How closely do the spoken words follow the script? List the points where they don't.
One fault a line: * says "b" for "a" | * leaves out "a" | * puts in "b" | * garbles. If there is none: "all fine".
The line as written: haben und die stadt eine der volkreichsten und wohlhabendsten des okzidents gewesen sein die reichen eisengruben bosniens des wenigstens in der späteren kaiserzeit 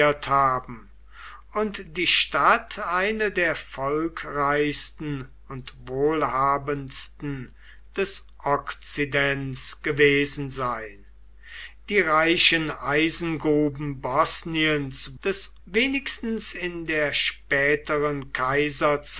all fine